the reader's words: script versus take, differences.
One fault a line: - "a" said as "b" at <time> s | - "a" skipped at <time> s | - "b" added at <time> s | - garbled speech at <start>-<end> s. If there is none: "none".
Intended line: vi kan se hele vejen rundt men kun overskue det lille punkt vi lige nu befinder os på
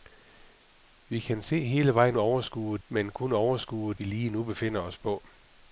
- "rundt" said as "overskue" at 2.2 s
- "det lille punkt" skipped at 3.9 s